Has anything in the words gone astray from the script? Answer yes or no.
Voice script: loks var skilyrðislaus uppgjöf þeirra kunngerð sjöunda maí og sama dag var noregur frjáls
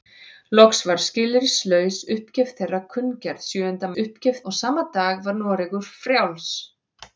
yes